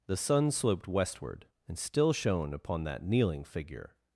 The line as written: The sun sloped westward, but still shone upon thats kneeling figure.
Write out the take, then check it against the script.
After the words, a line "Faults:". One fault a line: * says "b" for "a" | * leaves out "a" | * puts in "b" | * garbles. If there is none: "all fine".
The sun sloped westward, and still shone upon that kneeling figure.
Faults:
* says "and" for "but"
* says "that" for "thats"